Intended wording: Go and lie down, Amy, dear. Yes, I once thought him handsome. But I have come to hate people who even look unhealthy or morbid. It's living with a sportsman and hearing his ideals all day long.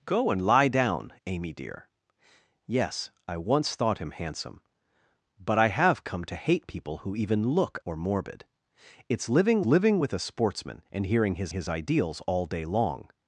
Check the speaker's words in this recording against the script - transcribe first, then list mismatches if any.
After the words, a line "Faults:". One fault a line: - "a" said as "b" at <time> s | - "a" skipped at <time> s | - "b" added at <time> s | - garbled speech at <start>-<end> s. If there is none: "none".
Go and lie down, Amy, dear. Yes, I once thought him handsome. But I have come to hate people who even look or morbid. It's living living with a sportsman and hearing his his ideals all day long.
Faults:
- "unhealthy" skipped at 7.8 s
- "living" added at 9.6 s
- "his" added at 11.5 s